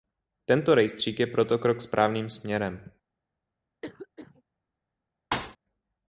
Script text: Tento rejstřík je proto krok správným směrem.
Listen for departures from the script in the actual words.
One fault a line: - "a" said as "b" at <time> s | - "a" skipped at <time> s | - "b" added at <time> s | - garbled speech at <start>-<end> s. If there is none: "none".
none